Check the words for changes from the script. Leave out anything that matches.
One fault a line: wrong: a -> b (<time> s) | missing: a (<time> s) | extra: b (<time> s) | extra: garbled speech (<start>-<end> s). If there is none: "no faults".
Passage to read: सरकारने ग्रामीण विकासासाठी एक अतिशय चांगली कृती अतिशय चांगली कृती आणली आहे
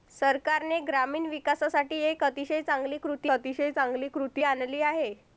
no faults